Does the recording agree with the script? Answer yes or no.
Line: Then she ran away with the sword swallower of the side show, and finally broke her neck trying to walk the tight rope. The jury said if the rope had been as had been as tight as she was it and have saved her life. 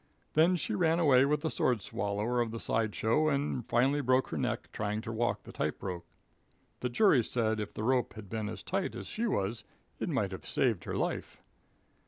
no